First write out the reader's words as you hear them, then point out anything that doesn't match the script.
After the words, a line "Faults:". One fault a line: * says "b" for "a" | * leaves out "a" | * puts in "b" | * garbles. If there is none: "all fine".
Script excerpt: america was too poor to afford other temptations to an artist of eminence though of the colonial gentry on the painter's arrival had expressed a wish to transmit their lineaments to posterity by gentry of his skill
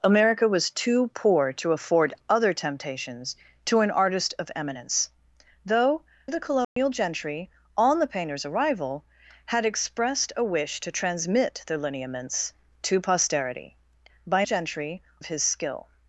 america was too poor to afford other temptations to an artist of eminence though of the colonial gentry on the painter's arrival had expressed a wish to transmit their lineaments to posterity by gentry of his skill
Faults:
all fine